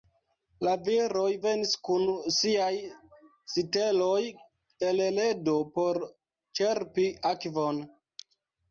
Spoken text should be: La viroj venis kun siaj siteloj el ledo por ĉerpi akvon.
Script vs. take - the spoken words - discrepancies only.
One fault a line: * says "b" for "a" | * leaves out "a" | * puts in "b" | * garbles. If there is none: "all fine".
all fine